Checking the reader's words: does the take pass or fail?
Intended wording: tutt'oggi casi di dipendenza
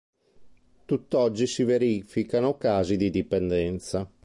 fail